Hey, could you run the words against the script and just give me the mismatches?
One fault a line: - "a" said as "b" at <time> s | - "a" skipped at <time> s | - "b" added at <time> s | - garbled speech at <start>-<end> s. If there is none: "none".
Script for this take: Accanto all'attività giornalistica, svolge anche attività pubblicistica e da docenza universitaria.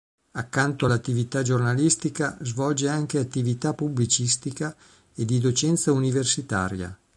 - "da" said as "di" at 5.2 s